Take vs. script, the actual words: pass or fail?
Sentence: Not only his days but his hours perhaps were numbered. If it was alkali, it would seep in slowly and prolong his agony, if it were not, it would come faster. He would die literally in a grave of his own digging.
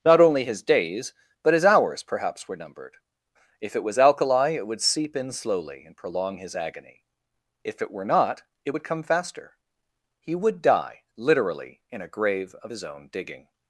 pass